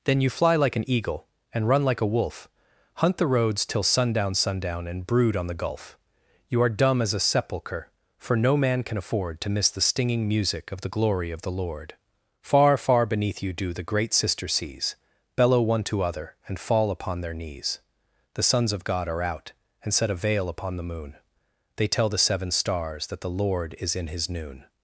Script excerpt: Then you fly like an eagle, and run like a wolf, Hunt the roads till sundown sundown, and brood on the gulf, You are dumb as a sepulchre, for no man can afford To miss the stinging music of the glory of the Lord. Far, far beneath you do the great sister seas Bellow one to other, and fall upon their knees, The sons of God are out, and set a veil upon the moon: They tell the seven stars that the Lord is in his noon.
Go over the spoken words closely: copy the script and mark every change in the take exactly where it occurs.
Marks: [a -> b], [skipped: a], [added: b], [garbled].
Then you fly like an eagle, and run like a wolf, Hunt the roads till sundown sundown, and brood on the gulf, You are dumb as a sepulchre, for no man can afford To miss the stinging music of the glory of the Lord. Far, far beneath you do the great sister seas Bellow one to other, and fall upon their knees, The sons of God are out, and set a veil upon the moon: They tell the seven stars that the Lord is in his noon.